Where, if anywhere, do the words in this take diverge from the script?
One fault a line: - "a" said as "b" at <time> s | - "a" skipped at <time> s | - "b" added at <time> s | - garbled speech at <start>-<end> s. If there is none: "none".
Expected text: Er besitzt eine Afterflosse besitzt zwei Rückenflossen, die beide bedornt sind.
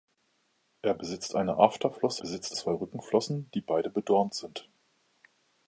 none